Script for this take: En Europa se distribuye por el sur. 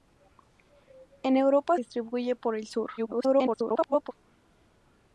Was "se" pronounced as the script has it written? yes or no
no